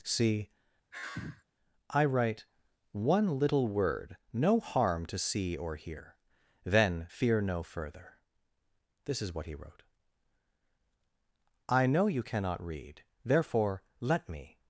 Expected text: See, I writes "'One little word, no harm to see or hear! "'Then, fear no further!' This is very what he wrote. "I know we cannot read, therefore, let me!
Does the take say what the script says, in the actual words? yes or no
no